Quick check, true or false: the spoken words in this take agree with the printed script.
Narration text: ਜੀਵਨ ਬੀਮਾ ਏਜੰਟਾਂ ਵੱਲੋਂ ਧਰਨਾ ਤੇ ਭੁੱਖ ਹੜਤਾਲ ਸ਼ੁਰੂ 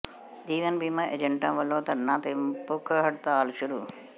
true